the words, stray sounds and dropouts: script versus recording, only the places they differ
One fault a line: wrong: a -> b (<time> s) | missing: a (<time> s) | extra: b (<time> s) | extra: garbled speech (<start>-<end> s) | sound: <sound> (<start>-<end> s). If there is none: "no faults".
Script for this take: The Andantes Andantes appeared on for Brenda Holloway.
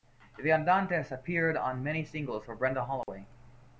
missing: Andantes (1.1 s)
extra: many singles (1.8 s)
sound: dropout (3.0-3.1 s)